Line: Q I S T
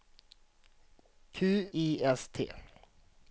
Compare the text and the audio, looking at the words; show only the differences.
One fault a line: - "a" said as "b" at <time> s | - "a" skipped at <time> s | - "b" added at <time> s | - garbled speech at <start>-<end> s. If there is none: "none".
none